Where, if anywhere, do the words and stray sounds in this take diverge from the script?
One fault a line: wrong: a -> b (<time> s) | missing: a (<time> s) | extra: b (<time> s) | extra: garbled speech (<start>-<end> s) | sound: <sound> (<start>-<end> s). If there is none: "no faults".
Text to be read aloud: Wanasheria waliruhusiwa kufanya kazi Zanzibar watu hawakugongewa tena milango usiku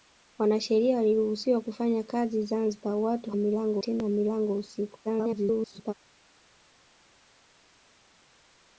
wrong: hawakugongewa -> milango (3.4 s)
extra: garbled speech (5.0-5.9 s)